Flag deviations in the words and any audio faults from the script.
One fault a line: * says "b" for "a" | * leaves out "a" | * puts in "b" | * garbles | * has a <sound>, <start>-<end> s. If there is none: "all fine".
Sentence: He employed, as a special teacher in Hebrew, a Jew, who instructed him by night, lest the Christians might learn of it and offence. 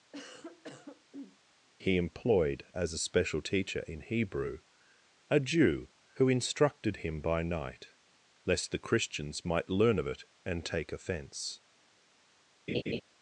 * has a cough, 0.1-1.4 s
* puts in "take"
* has a laugh, 12.7-13.0 s